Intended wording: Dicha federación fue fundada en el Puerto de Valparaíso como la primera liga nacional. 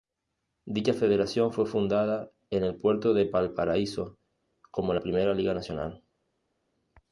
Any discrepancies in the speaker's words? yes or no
no